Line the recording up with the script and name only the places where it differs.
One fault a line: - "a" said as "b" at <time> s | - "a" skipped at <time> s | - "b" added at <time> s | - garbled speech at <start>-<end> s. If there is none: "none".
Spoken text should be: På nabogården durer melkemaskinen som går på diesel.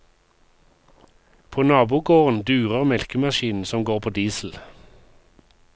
none